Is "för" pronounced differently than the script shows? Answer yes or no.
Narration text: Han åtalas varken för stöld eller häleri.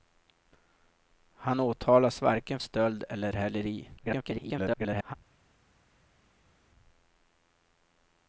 yes